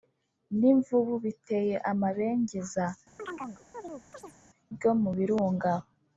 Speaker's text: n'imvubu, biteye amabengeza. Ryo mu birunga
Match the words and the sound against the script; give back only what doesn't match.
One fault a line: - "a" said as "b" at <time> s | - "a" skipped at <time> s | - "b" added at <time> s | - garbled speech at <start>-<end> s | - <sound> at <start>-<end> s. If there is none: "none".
- chirp at 3.2-4.4 s